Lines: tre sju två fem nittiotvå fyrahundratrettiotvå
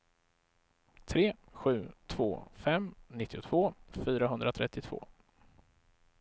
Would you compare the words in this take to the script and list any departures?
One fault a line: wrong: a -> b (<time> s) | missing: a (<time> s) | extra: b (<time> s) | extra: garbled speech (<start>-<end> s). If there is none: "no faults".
no faults